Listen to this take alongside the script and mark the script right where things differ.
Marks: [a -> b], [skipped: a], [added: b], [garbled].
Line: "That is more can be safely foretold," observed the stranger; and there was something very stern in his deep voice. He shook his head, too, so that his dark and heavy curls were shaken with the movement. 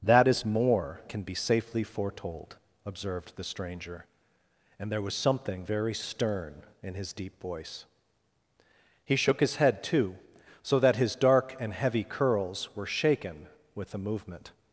"That is more can be safely foretold," observed the stranger; and there was something very stern in his deep voice. He shook his head, too, so that his dark and heavy curls were shaken with the movement.